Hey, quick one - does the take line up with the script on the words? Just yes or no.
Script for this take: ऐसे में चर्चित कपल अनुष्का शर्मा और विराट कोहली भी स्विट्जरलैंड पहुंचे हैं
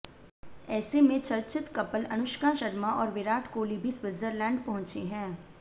yes